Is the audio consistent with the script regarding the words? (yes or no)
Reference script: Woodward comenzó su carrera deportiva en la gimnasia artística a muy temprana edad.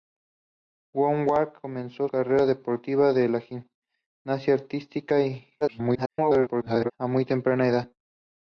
no